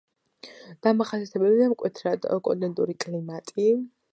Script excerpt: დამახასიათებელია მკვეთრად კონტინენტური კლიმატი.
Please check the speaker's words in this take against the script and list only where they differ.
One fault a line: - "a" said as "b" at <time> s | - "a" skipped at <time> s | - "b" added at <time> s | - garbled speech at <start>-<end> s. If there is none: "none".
none